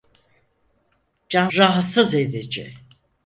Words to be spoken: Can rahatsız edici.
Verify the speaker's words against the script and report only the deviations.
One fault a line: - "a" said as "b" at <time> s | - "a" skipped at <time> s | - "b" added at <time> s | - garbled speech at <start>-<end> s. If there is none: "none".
none